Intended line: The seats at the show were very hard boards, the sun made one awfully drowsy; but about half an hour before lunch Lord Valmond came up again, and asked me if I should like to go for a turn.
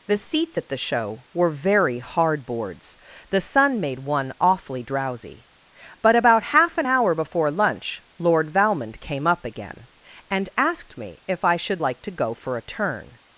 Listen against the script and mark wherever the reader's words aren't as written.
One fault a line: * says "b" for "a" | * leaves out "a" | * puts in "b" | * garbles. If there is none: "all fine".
all fine